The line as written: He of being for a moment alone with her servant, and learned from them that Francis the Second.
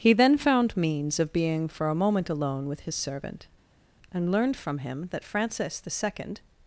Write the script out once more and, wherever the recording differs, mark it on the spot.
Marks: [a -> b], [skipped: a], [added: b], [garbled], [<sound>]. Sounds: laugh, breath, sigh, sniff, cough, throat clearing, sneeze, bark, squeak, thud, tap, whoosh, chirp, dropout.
He [added: then found means] of being for a moment alone with [her -> his] servant, and learned from [them -> him] that Francis the Second.